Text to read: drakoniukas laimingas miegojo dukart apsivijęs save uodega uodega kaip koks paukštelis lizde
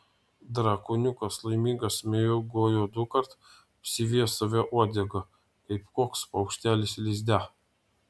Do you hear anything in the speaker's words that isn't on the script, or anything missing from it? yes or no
yes